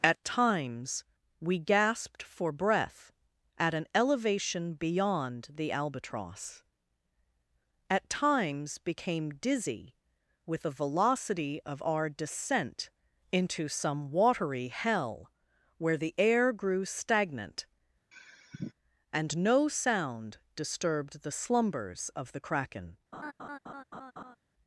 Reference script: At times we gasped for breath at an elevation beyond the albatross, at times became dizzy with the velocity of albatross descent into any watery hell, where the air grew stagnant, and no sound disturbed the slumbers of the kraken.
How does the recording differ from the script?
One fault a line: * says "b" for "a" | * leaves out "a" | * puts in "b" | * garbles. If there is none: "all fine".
* says "our" for "albatross"
* says "some" for "any"